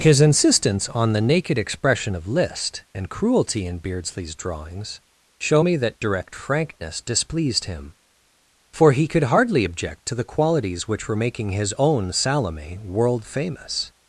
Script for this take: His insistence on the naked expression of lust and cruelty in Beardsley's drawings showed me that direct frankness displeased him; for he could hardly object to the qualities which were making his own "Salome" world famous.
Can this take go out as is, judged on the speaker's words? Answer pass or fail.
fail